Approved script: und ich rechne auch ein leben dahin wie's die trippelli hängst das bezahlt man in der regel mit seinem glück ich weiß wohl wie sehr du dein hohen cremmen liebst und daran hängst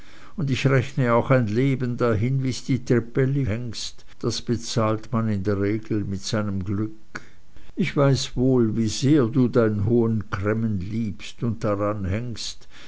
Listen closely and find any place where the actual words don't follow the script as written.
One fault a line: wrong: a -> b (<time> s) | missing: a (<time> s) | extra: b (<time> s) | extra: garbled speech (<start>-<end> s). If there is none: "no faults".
no faults